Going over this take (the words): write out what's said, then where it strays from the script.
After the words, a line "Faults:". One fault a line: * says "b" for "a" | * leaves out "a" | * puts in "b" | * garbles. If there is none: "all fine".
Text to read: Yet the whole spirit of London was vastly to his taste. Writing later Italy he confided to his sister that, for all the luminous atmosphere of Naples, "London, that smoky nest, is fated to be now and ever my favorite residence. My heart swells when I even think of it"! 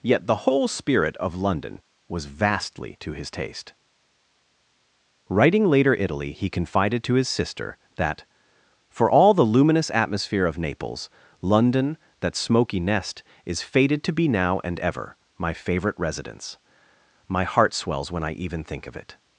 Yet the whole spirit of London was vastly to his taste. Writing later Italy he confided to his sister that, for all the luminous atmosphere of Naples, "London, that smoky nest, is fated to be now and ever my favorite residence. My heart swells when I even think of it"!
Faults:
all fine